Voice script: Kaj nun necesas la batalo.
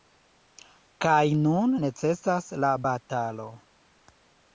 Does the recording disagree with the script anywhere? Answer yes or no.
no